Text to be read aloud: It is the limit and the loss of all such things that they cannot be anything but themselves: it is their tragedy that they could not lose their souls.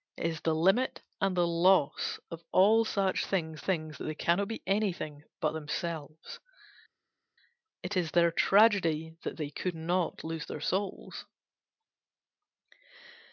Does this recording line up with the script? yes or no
no